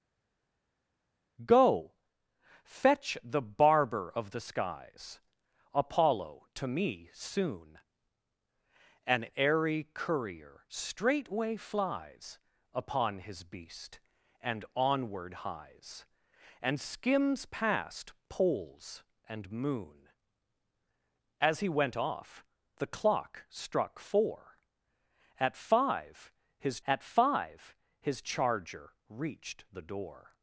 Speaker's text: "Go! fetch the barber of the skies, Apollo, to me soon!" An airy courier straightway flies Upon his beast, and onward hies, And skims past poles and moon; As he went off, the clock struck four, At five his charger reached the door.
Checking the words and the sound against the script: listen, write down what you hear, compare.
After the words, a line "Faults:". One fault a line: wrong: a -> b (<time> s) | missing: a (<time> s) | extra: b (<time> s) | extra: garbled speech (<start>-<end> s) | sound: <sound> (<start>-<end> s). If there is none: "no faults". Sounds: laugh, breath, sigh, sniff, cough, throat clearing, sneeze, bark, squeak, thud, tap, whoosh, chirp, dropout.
"Go! fetch the barber of the skies, Apollo, to me soon!" An airy courier straightway flies Upon his beast, and onward hies, And skims past poles and moon; As he went off, the clock struck four, At five his At five his charger reached the door.
Faults:
extra: At five his (26.9 s)